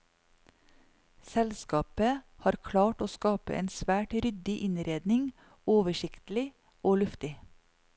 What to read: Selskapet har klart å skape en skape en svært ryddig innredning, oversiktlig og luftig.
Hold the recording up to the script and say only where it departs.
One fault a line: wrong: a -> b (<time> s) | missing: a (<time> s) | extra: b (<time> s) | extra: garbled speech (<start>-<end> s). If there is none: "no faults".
missing: skape en (3.7 s)